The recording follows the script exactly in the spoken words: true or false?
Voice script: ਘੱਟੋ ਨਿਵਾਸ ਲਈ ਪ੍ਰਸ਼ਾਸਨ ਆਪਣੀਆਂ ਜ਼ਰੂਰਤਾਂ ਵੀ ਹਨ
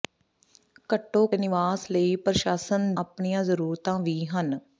true